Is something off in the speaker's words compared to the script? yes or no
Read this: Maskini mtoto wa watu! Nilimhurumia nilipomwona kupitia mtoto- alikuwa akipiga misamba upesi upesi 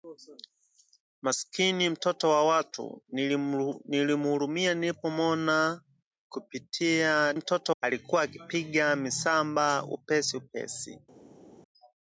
no